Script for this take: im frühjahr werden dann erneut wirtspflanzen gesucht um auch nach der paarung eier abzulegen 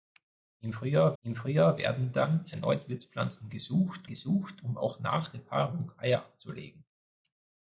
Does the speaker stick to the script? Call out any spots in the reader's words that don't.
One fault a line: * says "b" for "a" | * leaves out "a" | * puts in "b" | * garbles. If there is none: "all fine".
* puts in "im frühjahr"
* puts in "gesucht"